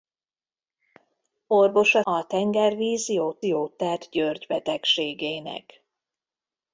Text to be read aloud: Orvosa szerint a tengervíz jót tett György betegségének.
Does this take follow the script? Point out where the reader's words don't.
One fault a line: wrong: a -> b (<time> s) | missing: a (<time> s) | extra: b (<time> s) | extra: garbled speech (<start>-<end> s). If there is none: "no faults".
missing: szerint (2.0 s)
extra: jót (3.4 s)